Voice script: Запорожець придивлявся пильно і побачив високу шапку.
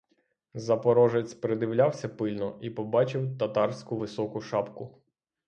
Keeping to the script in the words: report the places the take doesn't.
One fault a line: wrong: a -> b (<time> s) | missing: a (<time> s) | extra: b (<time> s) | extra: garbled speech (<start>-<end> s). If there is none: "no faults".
extra: татарську (3.4 s)